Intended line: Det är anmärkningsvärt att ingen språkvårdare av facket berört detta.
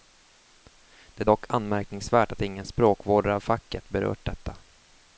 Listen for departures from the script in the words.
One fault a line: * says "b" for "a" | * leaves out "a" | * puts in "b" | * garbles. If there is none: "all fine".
* puts in "dock"